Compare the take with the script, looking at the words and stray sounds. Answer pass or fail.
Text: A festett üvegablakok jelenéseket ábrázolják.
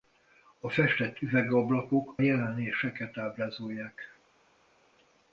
pass